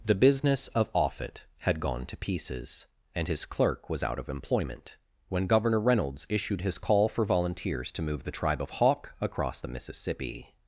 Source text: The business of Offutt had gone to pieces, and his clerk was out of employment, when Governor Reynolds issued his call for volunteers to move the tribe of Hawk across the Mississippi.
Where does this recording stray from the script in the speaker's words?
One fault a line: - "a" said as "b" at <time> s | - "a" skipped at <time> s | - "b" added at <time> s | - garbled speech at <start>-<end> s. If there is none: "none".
none